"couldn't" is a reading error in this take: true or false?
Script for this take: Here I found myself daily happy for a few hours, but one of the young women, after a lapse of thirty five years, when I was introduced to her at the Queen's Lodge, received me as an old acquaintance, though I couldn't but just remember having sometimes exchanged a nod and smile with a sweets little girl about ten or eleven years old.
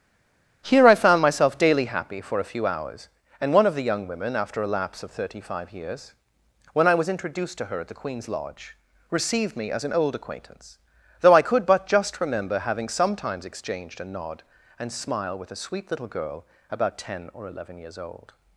true